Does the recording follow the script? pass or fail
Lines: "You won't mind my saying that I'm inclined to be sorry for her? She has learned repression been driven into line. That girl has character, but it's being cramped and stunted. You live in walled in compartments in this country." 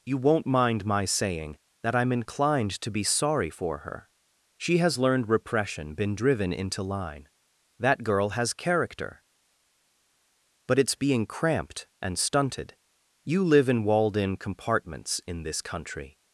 pass